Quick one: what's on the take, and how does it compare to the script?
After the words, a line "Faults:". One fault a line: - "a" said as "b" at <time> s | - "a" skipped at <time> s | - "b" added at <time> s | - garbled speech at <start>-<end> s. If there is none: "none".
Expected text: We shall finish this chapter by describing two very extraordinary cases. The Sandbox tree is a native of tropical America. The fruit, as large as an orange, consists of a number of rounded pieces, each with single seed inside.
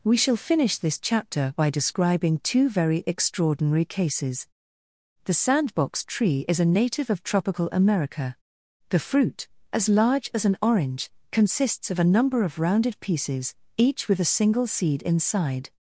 We shall finish this chapter by describing two very extraordinary cases. The Sandbox tree is a native of tropical America. The fruit, as large as an orange, consists of a number of rounded pieces, each with a single seed inside.
Faults:
- "a" added at 14.2 s